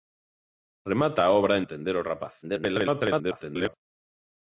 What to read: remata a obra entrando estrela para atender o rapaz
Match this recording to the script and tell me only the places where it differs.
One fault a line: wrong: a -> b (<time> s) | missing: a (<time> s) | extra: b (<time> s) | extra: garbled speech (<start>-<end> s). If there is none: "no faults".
missing: entrando estrela para (1.6 s)
extra: garbled speech (2.4-3.7 s)